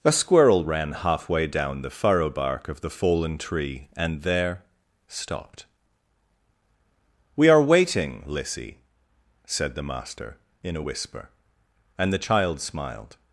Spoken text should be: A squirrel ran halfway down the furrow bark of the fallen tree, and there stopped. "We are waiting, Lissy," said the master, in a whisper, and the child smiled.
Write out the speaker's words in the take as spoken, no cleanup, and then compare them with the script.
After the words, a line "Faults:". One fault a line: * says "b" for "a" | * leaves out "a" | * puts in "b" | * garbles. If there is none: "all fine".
A squirrel ran halfway down the furrow bark of the fallen tree, and there stopped. "We are waiting, Lissy," said the master, in a whisper, and the child smiled.
Faults:
all fine